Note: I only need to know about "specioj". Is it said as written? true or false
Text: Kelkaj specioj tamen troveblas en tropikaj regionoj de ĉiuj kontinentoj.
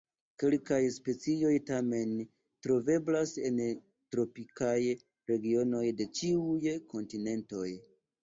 true